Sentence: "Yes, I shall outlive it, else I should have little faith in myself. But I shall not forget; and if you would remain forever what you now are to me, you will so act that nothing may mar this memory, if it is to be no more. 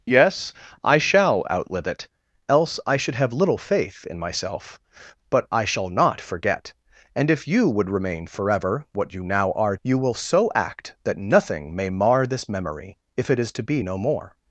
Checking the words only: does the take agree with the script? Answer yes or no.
no